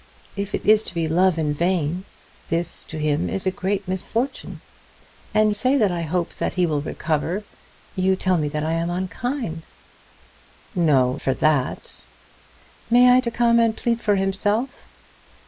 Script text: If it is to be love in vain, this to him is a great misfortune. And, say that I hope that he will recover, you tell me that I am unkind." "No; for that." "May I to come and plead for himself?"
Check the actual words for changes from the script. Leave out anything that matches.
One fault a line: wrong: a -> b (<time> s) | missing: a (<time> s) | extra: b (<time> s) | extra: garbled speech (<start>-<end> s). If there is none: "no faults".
no faults